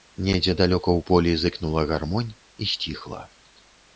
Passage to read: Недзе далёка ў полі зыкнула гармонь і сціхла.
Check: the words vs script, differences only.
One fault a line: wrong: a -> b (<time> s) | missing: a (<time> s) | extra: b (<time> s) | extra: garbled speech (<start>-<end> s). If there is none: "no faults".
no faults